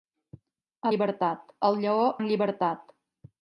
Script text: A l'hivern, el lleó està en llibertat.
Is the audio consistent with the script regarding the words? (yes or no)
no